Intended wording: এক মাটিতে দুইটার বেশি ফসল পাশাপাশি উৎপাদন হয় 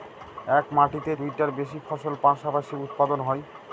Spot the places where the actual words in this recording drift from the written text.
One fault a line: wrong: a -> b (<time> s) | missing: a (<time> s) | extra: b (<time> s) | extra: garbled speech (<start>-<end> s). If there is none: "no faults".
no faults